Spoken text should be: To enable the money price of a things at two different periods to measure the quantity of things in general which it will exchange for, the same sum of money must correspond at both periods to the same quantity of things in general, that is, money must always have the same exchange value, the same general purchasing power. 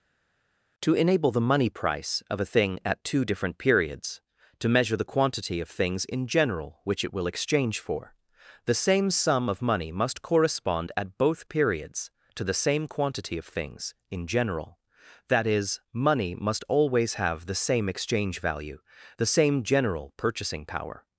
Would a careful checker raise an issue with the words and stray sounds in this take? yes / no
yes